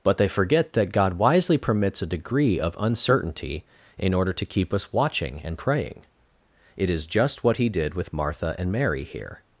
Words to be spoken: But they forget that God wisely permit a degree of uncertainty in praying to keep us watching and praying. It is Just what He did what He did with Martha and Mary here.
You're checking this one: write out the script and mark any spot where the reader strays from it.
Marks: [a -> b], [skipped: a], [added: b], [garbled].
But they forget that God wisely [permit -> permits] a degree of uncertainty in [praying -> order] to keep us watching and praying. It is Just what He did [skipped: what He did] with Martha and Mary here.